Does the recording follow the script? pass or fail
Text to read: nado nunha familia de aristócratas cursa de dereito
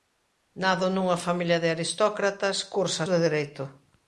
pass